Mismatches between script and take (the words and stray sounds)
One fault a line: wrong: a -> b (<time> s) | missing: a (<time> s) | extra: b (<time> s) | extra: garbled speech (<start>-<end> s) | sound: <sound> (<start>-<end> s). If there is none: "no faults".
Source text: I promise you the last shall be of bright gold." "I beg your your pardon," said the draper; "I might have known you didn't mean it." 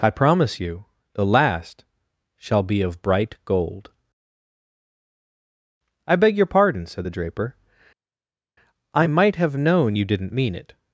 missing: your (6.5 s)